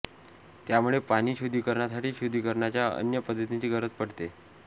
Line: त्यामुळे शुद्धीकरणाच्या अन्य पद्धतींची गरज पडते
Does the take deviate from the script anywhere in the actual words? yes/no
yes